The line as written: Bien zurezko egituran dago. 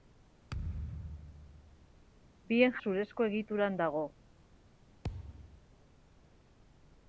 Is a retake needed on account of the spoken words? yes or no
no